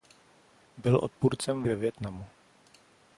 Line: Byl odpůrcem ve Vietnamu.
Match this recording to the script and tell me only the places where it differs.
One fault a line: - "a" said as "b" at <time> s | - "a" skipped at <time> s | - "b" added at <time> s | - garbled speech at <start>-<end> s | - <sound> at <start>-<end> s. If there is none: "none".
none